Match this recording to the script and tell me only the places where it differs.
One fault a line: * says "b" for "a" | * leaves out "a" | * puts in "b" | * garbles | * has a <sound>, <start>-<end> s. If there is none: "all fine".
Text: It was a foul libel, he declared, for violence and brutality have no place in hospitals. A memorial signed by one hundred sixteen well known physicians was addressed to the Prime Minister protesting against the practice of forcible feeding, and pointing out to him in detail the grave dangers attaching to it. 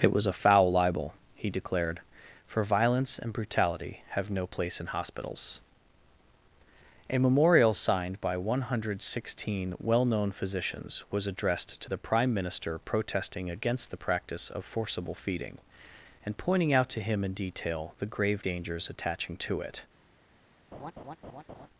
* has a laugh, 20.7-21.7 s